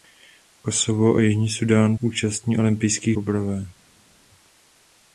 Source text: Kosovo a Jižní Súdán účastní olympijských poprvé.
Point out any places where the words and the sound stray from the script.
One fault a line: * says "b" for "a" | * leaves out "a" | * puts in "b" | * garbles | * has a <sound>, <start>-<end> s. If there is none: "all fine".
all fine